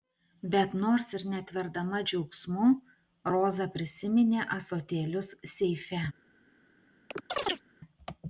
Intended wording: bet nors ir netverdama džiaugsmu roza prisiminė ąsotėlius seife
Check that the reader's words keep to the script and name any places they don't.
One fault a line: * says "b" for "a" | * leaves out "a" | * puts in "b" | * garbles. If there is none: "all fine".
all fine